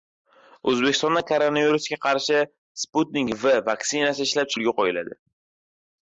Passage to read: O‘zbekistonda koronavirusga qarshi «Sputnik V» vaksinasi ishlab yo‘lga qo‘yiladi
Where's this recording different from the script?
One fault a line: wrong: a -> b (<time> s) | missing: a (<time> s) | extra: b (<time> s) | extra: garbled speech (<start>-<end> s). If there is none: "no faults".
no faults